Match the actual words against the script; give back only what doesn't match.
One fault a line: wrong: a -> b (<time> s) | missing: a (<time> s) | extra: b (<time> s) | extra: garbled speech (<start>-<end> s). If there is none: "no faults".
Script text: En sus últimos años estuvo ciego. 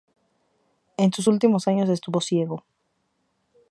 no faults